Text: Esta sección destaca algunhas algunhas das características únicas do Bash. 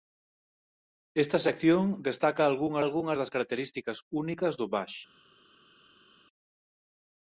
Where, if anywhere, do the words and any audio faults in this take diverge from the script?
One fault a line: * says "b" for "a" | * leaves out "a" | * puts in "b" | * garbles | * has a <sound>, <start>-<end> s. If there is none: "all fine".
all fine